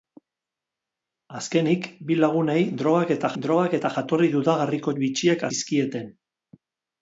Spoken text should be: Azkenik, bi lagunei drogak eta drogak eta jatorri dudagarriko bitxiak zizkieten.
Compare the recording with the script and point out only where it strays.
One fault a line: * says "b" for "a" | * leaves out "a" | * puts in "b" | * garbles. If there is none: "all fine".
all fine